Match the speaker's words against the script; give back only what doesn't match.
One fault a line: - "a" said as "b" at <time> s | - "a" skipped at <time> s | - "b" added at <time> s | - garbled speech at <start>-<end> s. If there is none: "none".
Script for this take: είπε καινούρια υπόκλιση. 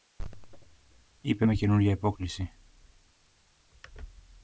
- "με" added at 1.4 s